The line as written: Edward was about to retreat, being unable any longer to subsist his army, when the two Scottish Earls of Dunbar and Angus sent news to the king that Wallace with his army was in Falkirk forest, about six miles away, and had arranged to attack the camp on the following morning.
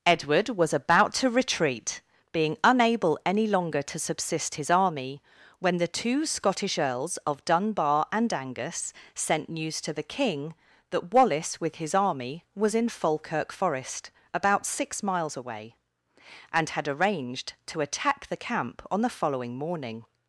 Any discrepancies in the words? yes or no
no